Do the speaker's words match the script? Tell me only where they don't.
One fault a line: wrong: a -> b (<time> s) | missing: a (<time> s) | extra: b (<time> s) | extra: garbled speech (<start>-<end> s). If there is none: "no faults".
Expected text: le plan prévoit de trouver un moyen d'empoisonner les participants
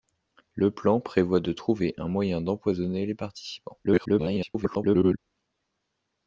extra: garbled speech (3.8-5.2 s)